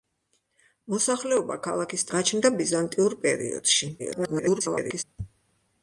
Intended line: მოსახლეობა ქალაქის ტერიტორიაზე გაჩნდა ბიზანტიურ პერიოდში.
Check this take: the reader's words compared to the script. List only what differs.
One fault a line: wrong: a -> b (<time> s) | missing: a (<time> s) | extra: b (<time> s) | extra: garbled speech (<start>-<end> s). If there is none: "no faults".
missing: ტერიტორიაზე (2.1 s)
extra: garbled speech (4.0-5.0 s)